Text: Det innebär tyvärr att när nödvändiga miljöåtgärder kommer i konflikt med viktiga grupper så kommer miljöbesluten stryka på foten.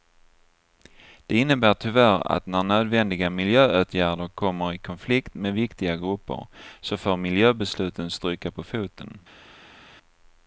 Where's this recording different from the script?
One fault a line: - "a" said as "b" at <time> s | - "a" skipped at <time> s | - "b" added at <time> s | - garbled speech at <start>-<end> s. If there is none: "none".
- "kommer" said as "får" at 7.0 s